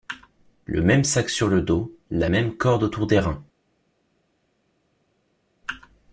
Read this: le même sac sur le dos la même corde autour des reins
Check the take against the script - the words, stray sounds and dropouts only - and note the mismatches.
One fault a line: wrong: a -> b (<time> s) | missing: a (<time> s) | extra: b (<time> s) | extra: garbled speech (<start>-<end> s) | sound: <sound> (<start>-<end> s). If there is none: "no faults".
no faults